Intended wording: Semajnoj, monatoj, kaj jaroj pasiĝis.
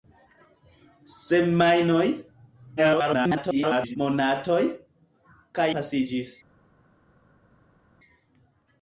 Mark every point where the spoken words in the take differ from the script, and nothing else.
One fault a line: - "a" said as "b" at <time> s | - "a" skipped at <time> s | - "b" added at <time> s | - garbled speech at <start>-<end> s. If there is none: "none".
- garbled speech at 2.8-4.0 s
- "jaroj" skipped at 5.7 s